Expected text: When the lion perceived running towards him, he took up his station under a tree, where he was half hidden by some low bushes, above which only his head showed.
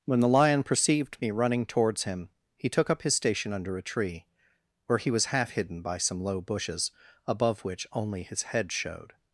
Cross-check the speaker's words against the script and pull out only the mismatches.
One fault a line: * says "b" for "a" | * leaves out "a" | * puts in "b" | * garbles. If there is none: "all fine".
* puts in "me"